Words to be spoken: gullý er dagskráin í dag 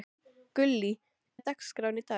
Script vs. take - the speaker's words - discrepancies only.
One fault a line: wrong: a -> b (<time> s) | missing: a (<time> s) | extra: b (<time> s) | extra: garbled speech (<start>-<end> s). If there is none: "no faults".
no faults